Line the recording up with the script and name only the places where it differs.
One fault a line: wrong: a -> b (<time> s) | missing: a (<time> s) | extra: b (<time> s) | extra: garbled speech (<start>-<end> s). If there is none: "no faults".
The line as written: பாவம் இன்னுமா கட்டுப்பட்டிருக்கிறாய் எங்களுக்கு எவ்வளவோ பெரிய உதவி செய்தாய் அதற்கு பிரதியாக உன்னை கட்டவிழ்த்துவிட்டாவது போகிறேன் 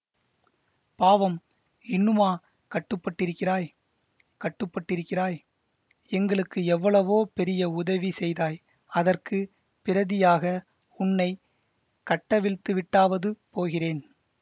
extra: கட்டுப்பட்டிருக்கிறாய் (4.4 s)